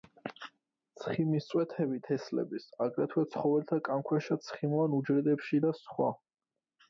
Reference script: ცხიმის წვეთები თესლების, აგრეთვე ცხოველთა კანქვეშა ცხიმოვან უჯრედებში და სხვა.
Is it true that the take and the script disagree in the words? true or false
false